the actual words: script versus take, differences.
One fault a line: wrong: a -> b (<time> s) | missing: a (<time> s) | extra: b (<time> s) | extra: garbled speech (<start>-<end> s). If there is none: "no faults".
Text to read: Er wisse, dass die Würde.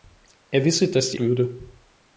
no faults